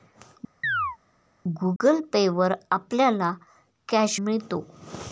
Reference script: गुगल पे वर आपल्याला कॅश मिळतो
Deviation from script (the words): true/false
false